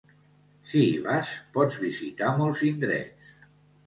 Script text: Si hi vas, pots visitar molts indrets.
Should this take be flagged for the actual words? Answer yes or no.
no